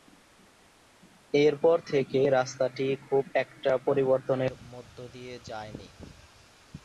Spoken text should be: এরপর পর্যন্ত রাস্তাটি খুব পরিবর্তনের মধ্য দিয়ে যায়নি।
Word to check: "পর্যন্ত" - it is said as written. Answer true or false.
false